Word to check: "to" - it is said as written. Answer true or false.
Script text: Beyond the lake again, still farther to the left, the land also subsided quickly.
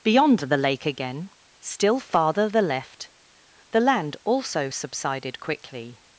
false